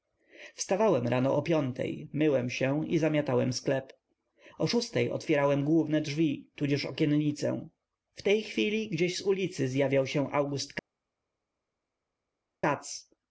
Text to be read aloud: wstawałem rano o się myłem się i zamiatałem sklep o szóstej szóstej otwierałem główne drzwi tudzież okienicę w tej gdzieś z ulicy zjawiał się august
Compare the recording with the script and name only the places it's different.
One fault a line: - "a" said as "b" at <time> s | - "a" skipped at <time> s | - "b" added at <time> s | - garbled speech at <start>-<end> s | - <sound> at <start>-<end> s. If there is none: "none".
- "się" said as "piątej" at 1.4 s
- "szóstej" skipped at 5.1 s
- "chwili" added at 8.4 s